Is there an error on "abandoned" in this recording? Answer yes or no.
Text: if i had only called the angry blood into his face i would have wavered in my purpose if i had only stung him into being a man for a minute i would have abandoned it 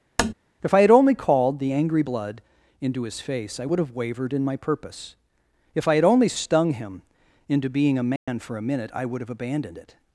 no